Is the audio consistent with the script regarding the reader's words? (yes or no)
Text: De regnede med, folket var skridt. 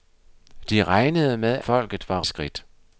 yes